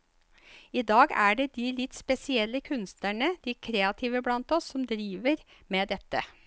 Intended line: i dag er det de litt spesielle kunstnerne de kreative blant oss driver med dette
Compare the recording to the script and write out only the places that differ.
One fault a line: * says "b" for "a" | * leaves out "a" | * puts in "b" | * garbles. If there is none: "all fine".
* puts in "som"